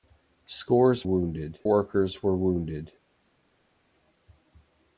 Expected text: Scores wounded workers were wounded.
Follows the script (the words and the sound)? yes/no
yes